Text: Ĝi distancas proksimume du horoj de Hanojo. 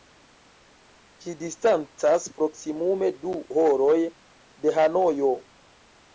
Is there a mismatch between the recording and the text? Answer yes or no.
no